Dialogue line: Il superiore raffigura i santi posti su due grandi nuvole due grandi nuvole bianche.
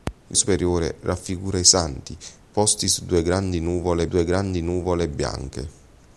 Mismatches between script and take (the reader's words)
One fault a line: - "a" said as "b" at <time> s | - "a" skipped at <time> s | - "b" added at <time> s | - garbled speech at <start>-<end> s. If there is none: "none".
none